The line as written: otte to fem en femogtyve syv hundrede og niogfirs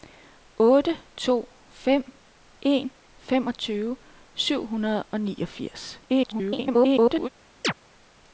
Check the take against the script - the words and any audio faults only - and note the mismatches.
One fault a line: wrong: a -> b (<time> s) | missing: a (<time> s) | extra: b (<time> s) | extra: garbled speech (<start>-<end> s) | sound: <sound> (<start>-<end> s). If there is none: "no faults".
extra: garbled speech (6.1-7.3 s)
sound: chirp (7.6-7.7 s)